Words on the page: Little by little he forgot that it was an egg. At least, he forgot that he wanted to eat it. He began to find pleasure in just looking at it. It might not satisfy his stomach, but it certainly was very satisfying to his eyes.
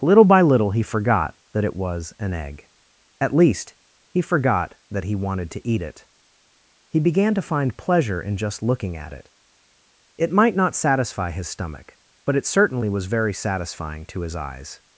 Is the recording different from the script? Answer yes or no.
no